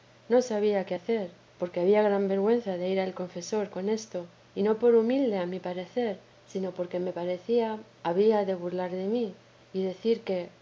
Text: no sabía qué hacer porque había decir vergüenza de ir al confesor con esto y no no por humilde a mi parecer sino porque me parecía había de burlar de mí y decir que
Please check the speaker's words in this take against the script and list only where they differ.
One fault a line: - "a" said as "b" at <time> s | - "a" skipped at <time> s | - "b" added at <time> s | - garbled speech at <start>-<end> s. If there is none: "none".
- "decir" said as "gran" at 2.0 s
- "no" skipped at 4.8 s